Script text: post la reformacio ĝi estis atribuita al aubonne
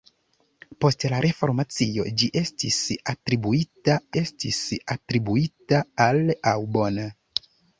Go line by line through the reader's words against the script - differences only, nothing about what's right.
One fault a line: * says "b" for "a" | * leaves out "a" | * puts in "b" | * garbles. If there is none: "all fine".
* puts in "estis atribuita"